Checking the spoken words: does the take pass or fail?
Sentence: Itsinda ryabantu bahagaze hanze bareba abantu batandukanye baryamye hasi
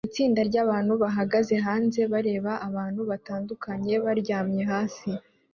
pass